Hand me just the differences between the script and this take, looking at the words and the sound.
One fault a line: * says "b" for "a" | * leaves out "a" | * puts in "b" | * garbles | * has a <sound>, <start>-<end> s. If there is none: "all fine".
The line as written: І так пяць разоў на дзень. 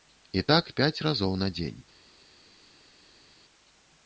all fine